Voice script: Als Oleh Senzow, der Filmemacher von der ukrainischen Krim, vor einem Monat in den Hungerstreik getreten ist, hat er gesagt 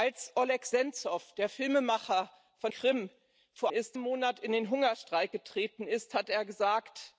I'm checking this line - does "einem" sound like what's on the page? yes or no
no